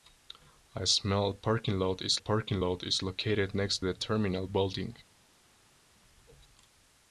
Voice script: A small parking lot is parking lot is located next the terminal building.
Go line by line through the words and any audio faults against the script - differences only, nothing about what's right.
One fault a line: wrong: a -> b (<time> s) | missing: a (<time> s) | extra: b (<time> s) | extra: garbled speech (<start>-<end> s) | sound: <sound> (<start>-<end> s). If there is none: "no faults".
no faults